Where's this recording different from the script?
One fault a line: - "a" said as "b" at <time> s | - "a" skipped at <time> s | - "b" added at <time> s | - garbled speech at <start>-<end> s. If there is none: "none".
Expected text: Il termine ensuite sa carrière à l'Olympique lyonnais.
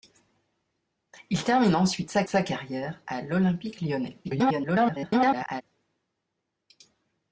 - "sa" added at 2.3 s
- garbled speech at 4.2-5.6 s